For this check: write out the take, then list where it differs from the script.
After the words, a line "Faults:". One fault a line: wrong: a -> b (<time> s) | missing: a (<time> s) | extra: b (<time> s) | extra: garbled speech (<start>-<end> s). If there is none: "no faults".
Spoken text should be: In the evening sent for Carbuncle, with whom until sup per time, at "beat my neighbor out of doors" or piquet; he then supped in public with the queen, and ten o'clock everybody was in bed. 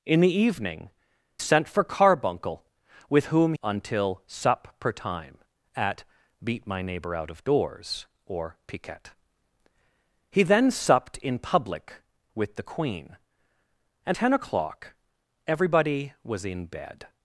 In the evening sent for Carbuncle, with whom until sup per time, at "beat my neighbor out of doors" or piquet; he then supped in public with the queen, and ten o'clock everybody was in bed.
Faults:
no faults